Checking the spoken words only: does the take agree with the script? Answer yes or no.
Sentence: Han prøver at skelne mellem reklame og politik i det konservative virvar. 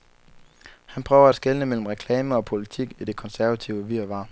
yes